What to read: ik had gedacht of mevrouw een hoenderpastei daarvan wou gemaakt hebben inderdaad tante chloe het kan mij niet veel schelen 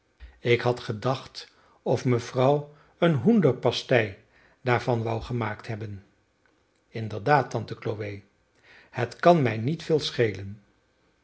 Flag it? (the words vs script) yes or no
no